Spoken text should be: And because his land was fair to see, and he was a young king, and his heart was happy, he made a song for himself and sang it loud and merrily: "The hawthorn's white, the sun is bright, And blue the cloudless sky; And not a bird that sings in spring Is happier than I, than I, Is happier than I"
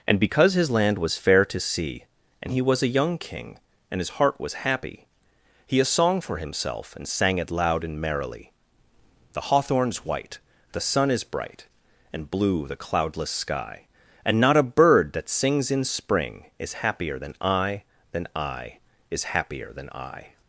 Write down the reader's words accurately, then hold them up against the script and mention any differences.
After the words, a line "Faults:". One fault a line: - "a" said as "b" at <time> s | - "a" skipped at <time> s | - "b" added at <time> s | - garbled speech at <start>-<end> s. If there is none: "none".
And because his land was fair to see, and he was a young king, and his heart was happy, he a song for himself and sang it loud and merrily: "The hawthorn's white, the sun is bright, And blue the cloudless sky; And not a bird that sings in spring Is happier than I, than I, Is happier than I"
Faults:
- "made" skipped at 5.8 s